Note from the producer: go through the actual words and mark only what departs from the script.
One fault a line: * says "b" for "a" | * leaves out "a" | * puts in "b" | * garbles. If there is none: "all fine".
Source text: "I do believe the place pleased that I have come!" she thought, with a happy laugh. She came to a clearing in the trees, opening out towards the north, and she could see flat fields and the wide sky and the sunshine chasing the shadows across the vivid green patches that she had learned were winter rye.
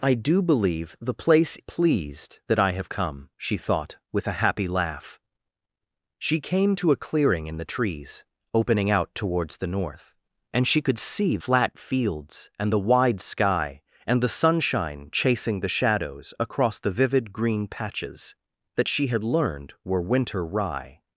all fine